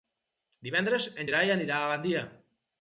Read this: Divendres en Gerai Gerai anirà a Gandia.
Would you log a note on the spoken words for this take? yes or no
yes